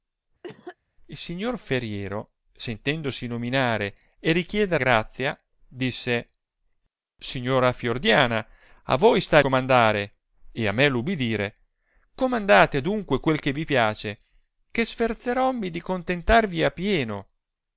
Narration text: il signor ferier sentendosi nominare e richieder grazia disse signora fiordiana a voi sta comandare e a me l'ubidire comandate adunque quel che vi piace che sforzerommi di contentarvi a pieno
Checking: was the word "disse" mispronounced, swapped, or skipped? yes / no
no